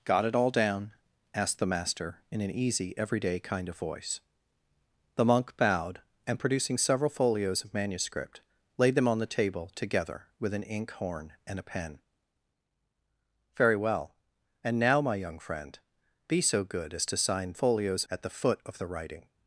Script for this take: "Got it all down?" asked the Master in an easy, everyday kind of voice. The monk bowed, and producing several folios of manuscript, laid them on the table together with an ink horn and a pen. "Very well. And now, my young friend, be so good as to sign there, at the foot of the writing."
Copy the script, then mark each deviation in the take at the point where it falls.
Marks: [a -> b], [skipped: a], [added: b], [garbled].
"Got it all down?" asked the Master in an easy, everyday kind of voice. The monk bowed, and producing several folios of manuscript, laid them on the table together with an ink horn and a pen. "Very well. And now, my young friend, be so good as to sign [there, -> folios] at the foot of the writing."